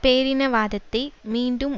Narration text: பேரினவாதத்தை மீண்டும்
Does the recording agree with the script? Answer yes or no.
yes